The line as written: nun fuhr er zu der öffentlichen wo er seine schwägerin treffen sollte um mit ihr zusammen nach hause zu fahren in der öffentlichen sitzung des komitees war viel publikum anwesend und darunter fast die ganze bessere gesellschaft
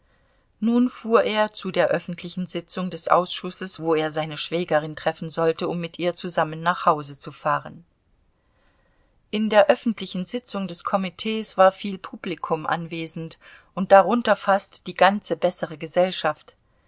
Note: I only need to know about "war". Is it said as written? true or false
true